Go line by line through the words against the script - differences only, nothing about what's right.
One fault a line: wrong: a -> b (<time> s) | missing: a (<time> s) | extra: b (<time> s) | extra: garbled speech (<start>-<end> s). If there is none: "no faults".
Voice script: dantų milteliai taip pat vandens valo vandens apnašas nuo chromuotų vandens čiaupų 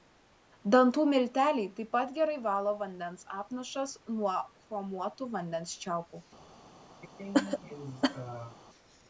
wrong: vandens -> gerai (2.1 s)